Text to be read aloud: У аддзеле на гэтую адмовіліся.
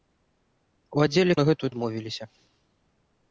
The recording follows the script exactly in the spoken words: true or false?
true